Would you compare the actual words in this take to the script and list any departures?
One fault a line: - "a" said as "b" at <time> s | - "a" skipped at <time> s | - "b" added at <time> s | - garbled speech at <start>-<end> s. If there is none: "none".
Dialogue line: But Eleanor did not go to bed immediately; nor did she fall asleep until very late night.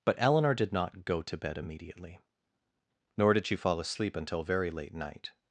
none